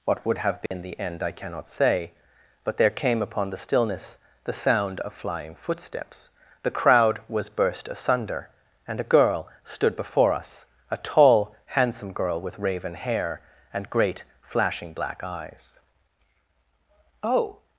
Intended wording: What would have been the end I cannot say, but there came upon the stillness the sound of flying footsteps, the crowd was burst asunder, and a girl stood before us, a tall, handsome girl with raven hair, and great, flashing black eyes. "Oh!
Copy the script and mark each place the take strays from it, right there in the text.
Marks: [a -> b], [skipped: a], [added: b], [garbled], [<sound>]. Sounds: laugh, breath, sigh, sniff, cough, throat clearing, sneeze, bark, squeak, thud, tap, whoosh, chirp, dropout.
What would have been [dropout] the end I cannot say, but there came upon the stillness the sound of flying footsteps, the crowd was burst asunder, and a girl stood before us, a tall, handsome girl with raven hair, and great, flashing black eyes. "Oh!